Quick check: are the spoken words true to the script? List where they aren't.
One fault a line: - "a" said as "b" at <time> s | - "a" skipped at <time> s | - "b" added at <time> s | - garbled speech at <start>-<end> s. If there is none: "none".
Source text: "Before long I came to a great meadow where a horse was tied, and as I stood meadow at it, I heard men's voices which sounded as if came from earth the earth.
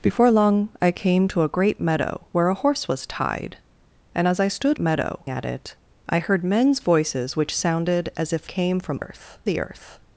none